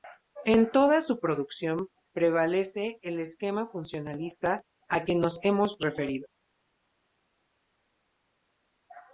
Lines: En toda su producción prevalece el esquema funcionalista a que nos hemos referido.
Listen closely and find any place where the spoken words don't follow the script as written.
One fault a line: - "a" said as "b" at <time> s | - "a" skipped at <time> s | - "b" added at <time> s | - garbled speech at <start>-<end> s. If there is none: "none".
none